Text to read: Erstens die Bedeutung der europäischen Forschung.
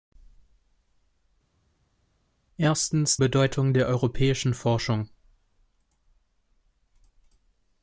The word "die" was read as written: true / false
false